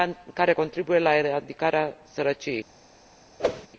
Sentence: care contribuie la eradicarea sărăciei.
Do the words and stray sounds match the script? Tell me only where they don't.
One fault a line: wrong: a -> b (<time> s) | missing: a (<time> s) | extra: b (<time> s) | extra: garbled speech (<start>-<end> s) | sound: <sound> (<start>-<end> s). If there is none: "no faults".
sound: whoosh (3.4-3.7 s)